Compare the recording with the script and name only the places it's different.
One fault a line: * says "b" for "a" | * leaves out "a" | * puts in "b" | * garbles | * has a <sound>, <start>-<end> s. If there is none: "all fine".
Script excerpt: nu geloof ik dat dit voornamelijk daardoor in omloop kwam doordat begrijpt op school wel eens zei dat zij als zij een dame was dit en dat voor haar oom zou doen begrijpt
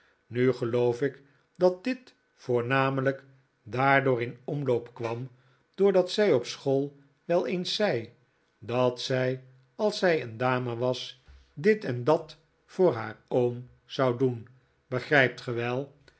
* says "zij" for "begrijpt"